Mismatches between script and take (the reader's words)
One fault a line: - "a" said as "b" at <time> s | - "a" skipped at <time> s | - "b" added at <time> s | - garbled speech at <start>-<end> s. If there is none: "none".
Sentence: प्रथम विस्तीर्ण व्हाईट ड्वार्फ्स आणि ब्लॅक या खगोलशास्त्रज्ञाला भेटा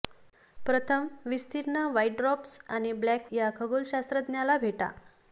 none